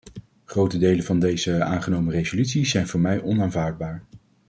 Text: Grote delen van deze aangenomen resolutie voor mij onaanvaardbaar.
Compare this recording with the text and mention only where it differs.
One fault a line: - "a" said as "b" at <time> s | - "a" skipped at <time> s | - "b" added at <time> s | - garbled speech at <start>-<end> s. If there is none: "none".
- "zijn" added at 2.6 s